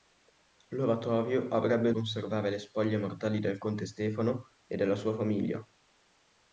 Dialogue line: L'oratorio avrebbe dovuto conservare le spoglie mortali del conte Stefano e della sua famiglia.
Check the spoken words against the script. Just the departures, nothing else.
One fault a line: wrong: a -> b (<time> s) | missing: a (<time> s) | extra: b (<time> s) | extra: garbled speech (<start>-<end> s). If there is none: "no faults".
missing: dovuto (1.9 s)